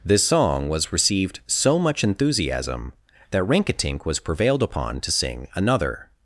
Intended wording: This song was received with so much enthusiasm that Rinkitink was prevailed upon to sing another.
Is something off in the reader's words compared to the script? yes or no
yes